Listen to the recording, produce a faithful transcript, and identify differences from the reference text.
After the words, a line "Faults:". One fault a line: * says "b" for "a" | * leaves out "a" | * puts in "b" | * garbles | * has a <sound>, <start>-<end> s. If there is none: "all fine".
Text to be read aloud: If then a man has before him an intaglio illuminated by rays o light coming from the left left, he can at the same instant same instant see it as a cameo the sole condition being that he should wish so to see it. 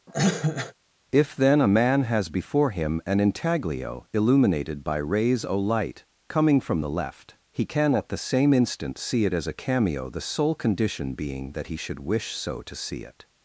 If then a man has before him an intaglio illuminated by rays o light coming from the left, he can at the same instant see it as a cameo the sole condition being that he should wish so to see it.
Faults:
* has a cough, 0.1-0.7 s
* leaves out "left"
* leaves out "same instant"